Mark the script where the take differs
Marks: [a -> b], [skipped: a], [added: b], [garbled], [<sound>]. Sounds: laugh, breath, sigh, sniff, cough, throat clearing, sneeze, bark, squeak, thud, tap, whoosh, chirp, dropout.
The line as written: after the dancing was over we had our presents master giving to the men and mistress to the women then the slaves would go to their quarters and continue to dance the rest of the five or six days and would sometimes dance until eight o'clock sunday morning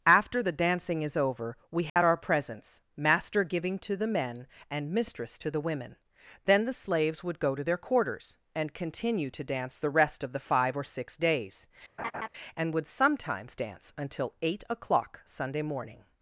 after the dancing [was -> is] over we had [dropout] our presents master giving to the men and mistress to the women then the slaves would go to their quarters and continue to dance the rest of the five or six days [laugh] and would sometimes dance until eight o'clock sunday morning